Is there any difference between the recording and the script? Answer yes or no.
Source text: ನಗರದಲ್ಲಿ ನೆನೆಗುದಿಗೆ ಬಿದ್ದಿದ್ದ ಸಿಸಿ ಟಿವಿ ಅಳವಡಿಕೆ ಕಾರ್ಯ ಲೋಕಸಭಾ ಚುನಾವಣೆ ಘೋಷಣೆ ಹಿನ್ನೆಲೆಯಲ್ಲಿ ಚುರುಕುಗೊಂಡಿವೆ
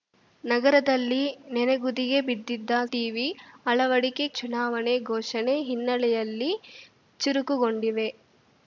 yes